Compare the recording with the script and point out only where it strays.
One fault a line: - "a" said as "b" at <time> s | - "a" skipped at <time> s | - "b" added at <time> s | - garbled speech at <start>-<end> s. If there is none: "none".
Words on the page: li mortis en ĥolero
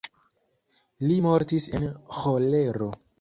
none